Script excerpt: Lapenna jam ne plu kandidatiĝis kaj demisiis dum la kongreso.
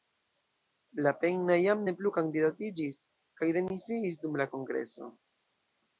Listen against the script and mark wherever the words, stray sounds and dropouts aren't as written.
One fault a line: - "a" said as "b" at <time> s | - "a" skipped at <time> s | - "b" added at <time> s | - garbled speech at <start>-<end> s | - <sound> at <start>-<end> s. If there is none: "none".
none